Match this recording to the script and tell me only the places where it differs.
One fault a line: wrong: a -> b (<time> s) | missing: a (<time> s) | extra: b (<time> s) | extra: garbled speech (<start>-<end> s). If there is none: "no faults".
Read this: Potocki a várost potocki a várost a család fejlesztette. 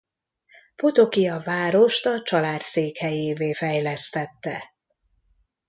missing: potocki (2.1 s)
wrong: várost a család -> család székhelyévé (2.2 s)